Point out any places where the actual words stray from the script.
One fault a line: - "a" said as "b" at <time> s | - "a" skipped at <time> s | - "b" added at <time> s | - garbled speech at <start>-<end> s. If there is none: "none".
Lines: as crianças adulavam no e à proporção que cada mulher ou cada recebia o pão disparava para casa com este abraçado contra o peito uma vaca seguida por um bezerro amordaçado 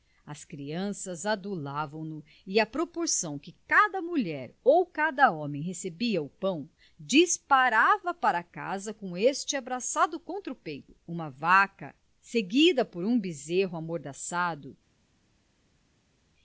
- "homem" added at 5.3 s